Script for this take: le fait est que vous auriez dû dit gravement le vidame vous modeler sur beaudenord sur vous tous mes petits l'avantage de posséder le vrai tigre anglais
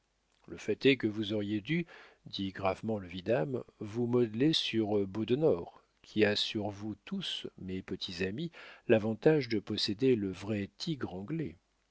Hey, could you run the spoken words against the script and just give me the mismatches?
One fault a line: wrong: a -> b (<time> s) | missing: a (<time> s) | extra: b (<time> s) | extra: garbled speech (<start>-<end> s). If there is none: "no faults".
extra: qui a (6.0 s)
extra: amis (8.2 s)